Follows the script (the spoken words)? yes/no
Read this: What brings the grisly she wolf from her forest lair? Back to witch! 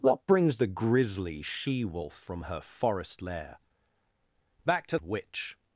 yes